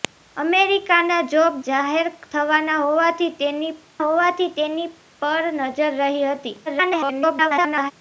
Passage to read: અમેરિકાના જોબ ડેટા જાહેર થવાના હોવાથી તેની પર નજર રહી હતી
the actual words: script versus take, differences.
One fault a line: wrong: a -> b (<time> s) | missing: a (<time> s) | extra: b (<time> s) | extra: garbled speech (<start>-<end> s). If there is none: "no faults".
missing: ડેટા (1.6 s)
extra: હોવાથી તેની (4.0 s)
extra: garbled speech (6.7-7.9 s)